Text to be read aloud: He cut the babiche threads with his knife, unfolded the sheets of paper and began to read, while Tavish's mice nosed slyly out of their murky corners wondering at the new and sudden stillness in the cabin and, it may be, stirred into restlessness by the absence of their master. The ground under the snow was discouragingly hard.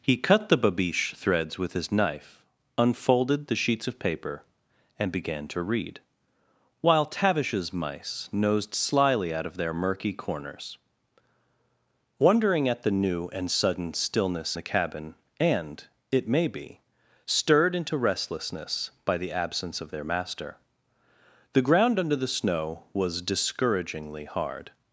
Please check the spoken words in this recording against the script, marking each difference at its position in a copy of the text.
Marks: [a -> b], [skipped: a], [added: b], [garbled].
He cut the babiche threads with his knife, unfolded the sheets of paper and began to read, while Tavish's mice nosed slyly out of their murky corners wondering at the new and sudden stillness [skipped: in] the cabin and, it may be, stirred into restlessness by the absence of their master. The ground under the snow was discouragingly hard.